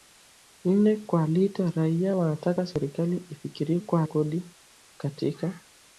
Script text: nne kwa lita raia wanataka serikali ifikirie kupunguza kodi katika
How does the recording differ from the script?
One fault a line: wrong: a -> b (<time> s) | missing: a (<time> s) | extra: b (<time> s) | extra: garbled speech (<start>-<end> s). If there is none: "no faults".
wrong: kupunguza -> kwa (3.8 s)